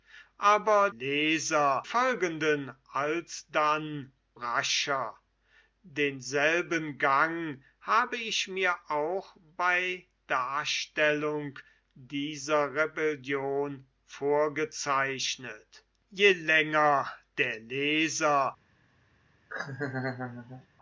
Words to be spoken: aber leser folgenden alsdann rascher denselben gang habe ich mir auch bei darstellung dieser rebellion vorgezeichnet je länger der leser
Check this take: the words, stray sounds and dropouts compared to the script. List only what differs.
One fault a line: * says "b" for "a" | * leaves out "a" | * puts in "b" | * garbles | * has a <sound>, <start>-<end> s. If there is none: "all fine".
* has a laugh, 19.5-20.7 s